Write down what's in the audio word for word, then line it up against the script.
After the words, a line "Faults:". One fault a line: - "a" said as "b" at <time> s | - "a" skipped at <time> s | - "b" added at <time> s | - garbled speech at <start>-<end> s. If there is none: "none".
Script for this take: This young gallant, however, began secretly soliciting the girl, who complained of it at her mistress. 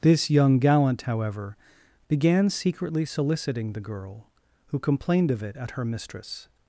This young gallant, however, began secretly soliciting the girl, who complained of it at her mistress.
Faults:
none